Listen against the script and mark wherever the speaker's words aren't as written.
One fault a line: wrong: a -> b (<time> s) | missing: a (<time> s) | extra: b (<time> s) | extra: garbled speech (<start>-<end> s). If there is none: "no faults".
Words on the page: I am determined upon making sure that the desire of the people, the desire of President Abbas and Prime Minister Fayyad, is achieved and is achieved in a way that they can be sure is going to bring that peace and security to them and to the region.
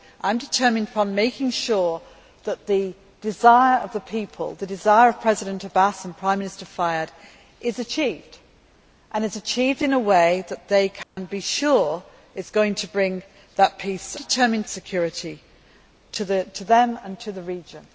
wrong: and -> determined (14.2 s)